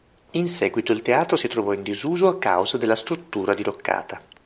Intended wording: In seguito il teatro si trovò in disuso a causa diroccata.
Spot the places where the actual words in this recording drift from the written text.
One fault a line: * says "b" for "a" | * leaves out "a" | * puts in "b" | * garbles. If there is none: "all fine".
* puts in "della struttura"